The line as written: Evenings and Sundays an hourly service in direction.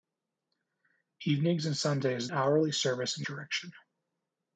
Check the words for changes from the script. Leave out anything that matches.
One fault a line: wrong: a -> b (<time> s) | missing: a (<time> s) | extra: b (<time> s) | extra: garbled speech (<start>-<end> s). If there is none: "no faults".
no faults